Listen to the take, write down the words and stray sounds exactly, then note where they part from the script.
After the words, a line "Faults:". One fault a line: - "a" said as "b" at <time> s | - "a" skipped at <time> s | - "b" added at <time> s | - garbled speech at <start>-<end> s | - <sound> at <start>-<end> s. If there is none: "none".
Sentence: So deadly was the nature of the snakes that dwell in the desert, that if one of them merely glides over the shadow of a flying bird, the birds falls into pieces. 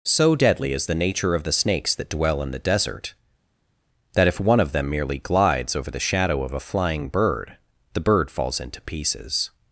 So deadly is the nature of the snakes that dwell in the desert, that if one of them merely glides over the shadow of a flying bird, the bird falls into pieces.
Faults:
- "was" said as "is" at 0.7 s
- "birds" said as "bird" at 8.0 s